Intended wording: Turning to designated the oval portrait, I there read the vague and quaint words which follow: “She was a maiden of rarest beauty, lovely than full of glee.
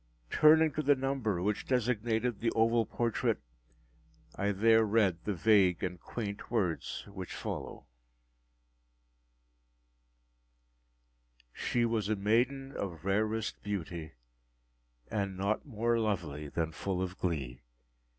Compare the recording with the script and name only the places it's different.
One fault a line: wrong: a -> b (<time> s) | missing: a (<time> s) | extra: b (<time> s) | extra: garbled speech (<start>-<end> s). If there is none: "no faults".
extra: the number which (0.8 s)
extra: and not more (15.1 s)